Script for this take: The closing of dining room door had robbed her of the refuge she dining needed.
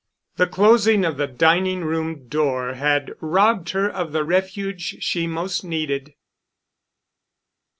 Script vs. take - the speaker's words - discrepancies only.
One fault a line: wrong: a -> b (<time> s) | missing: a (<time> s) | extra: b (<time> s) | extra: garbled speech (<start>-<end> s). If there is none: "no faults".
extra: the (1.2 s)
wrong: dining -> most (5.3 s)